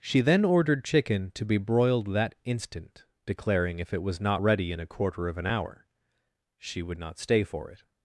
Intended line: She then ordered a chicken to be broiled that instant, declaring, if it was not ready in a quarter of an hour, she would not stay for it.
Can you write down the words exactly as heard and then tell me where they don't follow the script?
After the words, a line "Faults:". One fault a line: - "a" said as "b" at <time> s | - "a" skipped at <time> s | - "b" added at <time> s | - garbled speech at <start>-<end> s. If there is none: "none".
She then ordered chicken to be broiled that instant, declaring, if it was not ready in a quarter of an hour, she would not stay for it.
Faults:
- "a" skipped at 0.8 s